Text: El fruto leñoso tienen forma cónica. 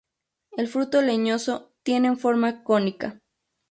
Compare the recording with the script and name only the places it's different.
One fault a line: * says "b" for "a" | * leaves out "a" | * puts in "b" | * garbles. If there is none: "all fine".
all fine